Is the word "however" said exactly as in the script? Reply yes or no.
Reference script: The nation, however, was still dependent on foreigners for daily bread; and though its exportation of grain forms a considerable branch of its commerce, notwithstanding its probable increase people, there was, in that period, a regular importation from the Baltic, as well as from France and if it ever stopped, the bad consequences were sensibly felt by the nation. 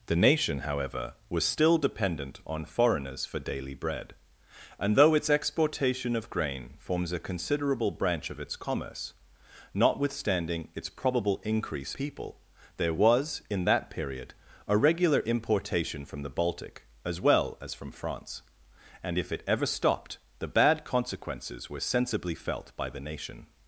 yes